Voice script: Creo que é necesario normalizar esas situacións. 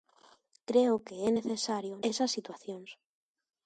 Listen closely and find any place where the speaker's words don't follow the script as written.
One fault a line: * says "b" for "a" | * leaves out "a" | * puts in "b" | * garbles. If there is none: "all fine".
* leaves out "normalizar"